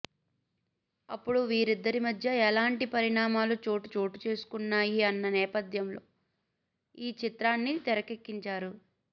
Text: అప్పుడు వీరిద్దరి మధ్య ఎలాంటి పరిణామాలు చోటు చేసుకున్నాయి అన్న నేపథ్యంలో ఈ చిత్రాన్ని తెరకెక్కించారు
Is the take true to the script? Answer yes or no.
no